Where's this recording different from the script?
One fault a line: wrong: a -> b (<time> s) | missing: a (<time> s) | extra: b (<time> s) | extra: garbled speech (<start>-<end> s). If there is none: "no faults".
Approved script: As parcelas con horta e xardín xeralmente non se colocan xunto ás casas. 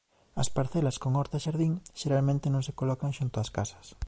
no faults